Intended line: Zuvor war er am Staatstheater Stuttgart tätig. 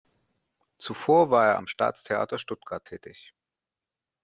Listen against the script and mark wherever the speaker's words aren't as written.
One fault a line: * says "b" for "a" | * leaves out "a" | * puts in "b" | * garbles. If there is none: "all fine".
all fine